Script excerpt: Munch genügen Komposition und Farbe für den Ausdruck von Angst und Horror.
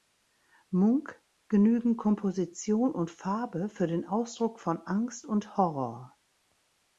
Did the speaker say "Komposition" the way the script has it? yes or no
yes